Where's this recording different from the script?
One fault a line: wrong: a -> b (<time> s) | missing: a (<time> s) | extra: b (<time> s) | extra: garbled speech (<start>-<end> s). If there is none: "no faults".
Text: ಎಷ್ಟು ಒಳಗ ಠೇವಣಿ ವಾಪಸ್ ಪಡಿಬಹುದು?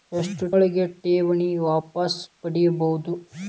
no faults